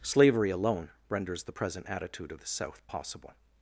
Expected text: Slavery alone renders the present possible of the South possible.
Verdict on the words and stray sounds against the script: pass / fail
fail